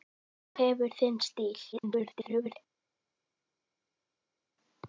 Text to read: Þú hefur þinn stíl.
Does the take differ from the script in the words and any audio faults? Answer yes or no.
yes